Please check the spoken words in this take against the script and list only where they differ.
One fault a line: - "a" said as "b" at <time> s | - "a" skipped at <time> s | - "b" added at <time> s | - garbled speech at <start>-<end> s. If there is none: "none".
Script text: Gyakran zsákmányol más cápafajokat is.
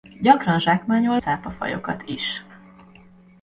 - "más" skipped at 1.2 s